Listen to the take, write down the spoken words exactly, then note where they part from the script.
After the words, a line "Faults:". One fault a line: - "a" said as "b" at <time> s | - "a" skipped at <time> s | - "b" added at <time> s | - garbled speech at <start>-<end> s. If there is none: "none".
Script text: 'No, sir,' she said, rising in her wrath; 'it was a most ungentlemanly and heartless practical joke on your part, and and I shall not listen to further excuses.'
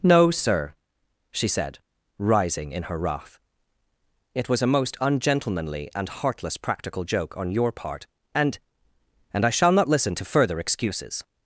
'No, sir,' she said, rising in her wrath; 'it was a most ungentlemanly and heartless practical joke on your part, and and I shall not listen to further excuses.'
Faults:
none